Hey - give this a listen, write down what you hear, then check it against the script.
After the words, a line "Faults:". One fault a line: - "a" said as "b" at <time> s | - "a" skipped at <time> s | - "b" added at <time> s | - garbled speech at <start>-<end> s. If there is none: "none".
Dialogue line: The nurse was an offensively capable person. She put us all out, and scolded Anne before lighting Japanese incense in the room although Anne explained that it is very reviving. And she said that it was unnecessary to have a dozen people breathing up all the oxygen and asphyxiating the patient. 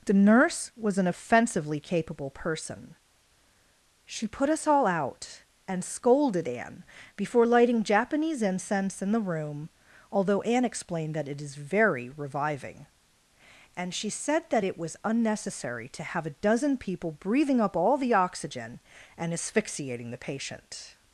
The nurse was an offensively capable person. She put us all out, and scolded Anne before lighting Japanese incense in the room although Anne explained that it is very reviving. And she said that it was unnecessary to have a dozen people breathing up all the oxygen and asphyxiating the patient.
Faults:
none